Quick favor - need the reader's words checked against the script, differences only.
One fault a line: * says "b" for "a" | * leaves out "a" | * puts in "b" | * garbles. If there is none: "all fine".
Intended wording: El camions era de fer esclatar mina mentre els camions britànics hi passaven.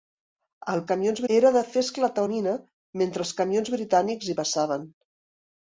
all fine